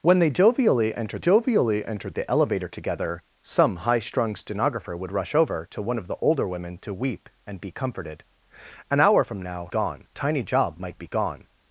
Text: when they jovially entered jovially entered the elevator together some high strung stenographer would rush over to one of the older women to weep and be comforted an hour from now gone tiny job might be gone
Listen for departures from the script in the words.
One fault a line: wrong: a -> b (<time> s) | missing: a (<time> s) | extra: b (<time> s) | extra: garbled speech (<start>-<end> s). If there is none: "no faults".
no faults